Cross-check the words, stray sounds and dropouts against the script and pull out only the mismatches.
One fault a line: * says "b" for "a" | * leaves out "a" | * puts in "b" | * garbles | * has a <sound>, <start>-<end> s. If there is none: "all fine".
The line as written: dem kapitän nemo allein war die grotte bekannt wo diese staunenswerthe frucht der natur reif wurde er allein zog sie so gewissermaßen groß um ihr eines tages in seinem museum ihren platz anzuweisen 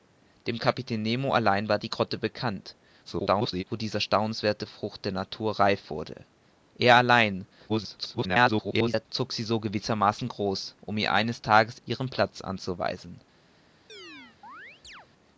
* garbles
* garbles
* leaves out "in seinem museum"
* has a chirp, 13.9-15.1 s